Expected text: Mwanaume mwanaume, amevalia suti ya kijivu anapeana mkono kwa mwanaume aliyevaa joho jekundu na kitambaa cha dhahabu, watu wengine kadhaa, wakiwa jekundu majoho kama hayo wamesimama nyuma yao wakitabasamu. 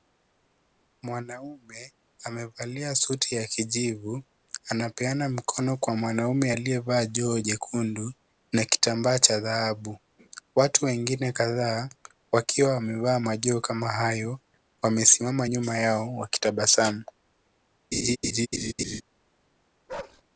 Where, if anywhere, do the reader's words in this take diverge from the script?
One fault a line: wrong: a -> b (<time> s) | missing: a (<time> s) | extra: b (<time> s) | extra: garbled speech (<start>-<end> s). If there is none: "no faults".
missing: mwanaume (1.9 s)
wrong: jekundu -> wamevaa (12.7 s)